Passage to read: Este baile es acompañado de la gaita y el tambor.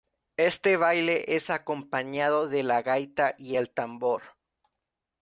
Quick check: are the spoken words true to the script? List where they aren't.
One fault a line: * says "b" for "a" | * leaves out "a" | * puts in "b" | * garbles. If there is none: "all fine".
all fine